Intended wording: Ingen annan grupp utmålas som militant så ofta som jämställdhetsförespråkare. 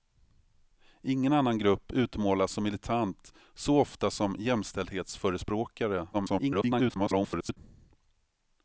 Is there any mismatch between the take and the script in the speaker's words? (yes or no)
yes